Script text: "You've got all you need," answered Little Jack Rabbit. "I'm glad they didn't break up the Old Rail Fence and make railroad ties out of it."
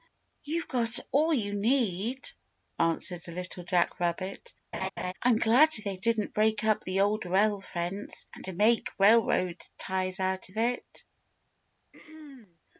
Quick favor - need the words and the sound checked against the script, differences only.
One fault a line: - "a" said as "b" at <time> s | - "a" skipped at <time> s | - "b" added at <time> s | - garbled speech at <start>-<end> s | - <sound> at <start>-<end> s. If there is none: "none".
- laugh at 4.7-5.1 s
- throat clearing at 11.9-12.6 s